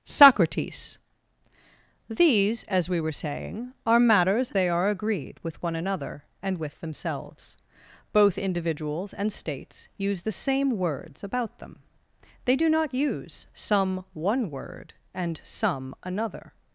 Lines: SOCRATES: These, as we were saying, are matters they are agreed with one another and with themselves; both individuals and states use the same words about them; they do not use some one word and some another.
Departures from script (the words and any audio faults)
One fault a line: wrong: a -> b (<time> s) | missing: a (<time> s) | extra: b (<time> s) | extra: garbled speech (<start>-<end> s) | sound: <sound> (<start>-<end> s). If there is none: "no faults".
no faults